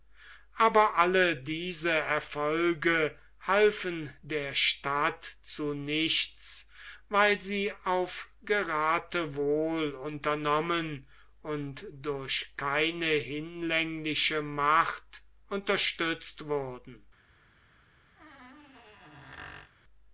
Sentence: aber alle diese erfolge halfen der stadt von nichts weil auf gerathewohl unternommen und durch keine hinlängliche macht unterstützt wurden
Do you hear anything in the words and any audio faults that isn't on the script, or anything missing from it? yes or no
yes